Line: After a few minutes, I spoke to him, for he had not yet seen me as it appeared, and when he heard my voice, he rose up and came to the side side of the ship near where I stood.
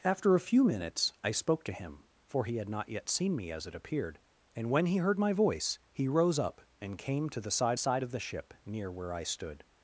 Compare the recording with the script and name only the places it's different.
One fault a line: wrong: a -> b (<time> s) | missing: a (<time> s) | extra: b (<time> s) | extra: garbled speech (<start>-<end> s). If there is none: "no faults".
no faults